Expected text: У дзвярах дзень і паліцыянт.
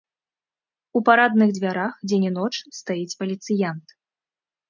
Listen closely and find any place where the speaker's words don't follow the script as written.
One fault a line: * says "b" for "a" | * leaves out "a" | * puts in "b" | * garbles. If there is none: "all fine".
* puts in "парадных"
* puts in "ноч стаіць"